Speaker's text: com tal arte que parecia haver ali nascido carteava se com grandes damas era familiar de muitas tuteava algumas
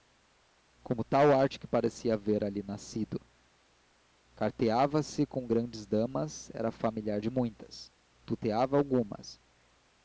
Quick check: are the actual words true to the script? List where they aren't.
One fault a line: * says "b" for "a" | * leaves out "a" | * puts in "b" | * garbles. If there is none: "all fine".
all fine